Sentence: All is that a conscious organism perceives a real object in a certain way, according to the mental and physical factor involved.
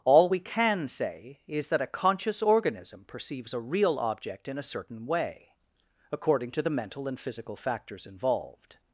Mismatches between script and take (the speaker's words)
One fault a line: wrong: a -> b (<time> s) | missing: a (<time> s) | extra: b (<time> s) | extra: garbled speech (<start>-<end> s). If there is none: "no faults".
extra: we can say (0.3 s)
wrong: factor -> factors (7.6 s)